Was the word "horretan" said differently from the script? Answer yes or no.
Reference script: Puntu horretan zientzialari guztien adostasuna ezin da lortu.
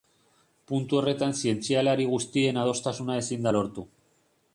no